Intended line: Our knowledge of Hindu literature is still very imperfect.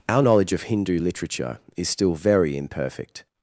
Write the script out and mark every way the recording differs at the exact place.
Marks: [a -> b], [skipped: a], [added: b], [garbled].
Our knowledge of Hindu literature is still very imperfect.